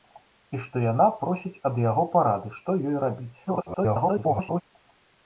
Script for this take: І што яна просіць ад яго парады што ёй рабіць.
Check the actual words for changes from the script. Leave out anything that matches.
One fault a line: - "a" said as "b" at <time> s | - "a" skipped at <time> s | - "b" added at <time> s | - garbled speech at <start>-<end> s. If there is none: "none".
- garbled speech at 3.5-4.6 s